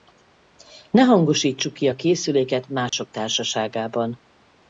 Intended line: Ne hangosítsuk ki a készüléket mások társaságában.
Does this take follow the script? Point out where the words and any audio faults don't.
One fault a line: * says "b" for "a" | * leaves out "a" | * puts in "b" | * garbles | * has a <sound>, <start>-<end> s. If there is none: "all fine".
* has a dropout, 2.9-2.9 s